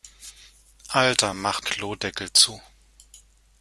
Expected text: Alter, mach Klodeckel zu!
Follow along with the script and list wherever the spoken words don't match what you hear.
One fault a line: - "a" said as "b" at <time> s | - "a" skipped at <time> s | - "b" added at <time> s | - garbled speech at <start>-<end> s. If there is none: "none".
none